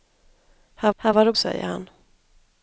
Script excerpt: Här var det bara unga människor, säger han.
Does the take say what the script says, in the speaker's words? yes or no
no